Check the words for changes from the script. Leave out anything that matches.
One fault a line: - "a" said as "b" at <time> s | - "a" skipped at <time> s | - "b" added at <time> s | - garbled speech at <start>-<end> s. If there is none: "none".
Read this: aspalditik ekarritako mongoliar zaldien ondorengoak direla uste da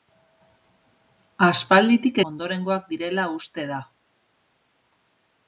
- "ekarritako mongoliar zaldien" skipped at 2.2 s